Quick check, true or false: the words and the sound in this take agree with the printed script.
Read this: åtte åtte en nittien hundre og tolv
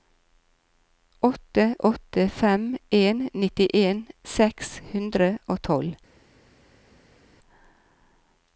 false